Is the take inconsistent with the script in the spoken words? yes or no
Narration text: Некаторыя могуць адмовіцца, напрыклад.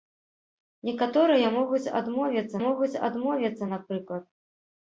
yes